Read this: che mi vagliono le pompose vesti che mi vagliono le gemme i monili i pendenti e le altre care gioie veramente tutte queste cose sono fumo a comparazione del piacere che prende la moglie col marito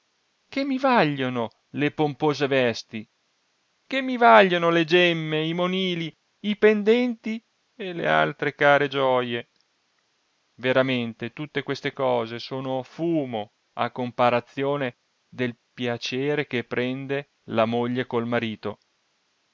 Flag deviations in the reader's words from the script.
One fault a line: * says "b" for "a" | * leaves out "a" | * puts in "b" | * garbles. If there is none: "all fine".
all fine